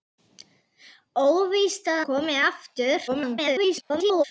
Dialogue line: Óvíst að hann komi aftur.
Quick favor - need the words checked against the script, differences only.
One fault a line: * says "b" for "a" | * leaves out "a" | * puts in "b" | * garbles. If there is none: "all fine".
* leaves out "hann"
* garbles